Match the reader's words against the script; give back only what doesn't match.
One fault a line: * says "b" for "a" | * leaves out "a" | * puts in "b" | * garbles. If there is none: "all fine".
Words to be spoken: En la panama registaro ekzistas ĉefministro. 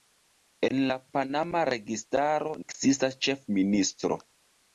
all fine